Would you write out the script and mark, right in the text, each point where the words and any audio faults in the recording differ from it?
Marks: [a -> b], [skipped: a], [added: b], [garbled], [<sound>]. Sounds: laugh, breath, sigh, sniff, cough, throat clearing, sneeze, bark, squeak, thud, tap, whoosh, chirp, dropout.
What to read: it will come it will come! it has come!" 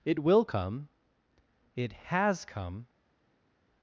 it will come it [skipped: will come! it] has come!"